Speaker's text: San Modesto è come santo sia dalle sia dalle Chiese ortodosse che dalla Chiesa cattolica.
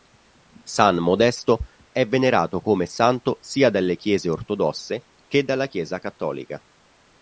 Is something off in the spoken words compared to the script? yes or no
yes